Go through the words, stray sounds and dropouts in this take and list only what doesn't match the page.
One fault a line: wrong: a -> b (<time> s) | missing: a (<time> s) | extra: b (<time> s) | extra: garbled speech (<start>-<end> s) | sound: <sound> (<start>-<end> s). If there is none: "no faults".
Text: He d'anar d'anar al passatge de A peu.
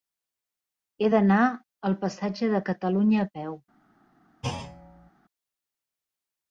missing: d'anar (1.4 s)
extra: Catalunya (2.7 s)
sound: thud (4.4-5.1 s)